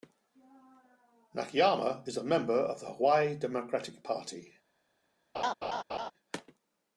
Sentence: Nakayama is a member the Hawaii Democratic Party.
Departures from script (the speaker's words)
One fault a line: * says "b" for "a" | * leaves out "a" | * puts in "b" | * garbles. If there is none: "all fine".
* puts in "of"